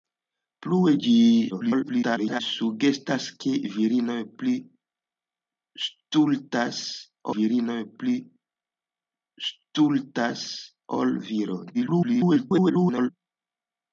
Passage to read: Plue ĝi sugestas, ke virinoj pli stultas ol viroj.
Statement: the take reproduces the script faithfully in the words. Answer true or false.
false